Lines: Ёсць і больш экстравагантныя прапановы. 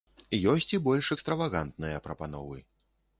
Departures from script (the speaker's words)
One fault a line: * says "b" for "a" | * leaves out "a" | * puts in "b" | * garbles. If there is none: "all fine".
all fine